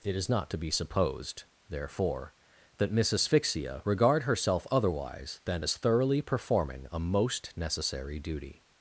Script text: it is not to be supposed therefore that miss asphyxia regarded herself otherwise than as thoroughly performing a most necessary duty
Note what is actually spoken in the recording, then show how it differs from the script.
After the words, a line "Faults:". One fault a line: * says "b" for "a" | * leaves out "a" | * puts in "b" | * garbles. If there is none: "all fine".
it is not to be supposed therefore that miss asphyxia regard herself otherwise than as thoroughly performing a most necessary duty
Faults:
* says "regard" for "regarded"